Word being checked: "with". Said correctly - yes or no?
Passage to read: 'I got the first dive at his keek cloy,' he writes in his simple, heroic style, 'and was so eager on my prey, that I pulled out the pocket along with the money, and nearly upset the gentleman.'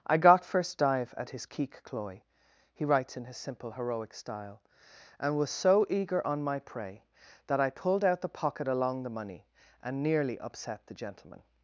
no